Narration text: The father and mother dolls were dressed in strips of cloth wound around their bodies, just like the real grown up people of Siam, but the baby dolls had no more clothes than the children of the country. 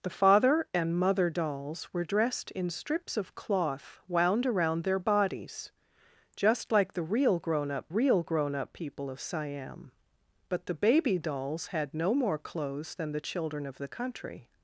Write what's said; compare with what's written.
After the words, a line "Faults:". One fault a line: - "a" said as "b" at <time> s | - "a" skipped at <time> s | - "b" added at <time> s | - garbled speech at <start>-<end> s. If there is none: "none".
The father and mother dolls were dressed in strips of cloth wound around their bodies, just like the real grown up real grown up people of Siam, but the baby dolls had no more clothes than the children of the country.
Faults:
- "real grown up" added at 7.9 s